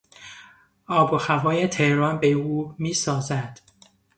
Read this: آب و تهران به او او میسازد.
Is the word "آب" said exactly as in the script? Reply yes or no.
yes